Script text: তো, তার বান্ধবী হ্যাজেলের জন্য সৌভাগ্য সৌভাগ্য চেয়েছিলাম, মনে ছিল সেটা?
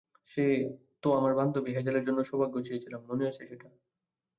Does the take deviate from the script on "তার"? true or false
true